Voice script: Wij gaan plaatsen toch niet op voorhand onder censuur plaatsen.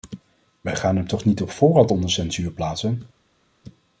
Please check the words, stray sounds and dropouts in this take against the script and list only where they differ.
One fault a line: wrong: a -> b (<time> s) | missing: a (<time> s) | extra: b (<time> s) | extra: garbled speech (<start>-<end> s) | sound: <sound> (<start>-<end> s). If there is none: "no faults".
wrong: plaatsen -> hem (0.9 s)